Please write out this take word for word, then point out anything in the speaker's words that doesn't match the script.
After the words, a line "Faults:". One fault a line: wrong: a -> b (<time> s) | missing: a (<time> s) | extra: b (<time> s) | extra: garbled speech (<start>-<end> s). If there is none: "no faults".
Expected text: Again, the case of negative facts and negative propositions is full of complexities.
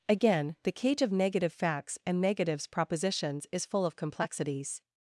Again, the cage of negative facts and negatives propositions is full of complexities.
Faults:
wrong: case -> cage (0.7 s)
wrong: negative -> negatives (2.2 s)